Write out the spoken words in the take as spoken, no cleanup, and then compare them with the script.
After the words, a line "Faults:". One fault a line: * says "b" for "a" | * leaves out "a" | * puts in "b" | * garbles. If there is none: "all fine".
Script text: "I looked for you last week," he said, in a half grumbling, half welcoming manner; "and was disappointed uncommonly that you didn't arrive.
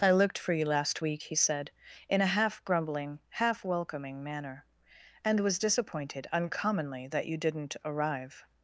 "I looked for you last week," he said, in a half grumbling, half welcoming manner; "and was disappointed uncommonly that you didn't arrive.
Faults:
all fine